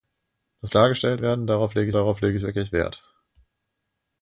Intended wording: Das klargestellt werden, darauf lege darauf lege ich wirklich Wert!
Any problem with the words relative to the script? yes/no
no